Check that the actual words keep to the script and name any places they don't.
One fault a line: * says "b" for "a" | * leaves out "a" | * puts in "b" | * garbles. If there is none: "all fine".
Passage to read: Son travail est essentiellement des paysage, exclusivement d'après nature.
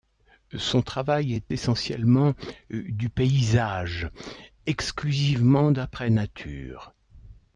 * says "du" for "des"